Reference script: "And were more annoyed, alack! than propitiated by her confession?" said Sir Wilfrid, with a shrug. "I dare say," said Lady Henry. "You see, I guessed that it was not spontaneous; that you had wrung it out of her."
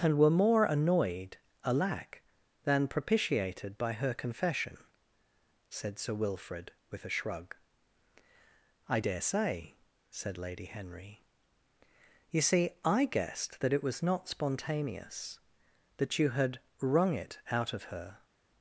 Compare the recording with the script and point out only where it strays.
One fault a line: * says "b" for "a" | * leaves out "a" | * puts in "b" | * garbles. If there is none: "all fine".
all fine